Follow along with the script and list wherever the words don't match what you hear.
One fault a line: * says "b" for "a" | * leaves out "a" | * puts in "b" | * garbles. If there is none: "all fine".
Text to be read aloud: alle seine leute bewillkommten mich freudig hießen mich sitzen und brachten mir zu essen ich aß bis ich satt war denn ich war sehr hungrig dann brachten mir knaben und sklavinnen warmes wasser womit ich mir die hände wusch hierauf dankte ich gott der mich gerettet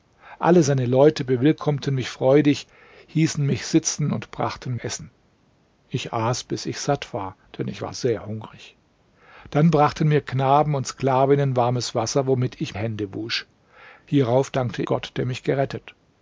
* leaves out "mir zu"
* leaves out "mir die"
* leaves out "ich"